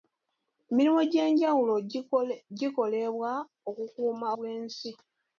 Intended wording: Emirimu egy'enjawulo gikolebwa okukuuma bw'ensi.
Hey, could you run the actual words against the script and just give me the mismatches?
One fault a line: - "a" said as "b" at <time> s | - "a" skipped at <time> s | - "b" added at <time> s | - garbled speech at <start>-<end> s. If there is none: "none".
none